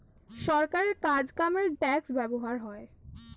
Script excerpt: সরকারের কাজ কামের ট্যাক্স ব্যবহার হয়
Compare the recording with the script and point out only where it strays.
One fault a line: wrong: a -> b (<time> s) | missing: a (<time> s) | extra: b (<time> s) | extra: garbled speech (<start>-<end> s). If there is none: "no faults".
no faults